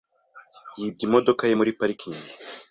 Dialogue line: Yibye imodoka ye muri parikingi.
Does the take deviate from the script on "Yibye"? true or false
false